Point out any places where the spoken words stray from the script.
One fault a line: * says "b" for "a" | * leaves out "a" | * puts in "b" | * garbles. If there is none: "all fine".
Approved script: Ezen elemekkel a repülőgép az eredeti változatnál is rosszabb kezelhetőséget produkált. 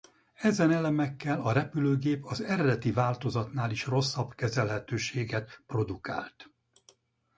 all fine